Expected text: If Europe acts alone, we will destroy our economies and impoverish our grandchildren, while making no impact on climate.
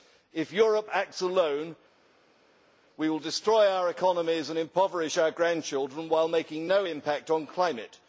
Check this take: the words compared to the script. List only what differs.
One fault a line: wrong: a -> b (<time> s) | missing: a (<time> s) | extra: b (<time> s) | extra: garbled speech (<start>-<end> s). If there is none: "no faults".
no faults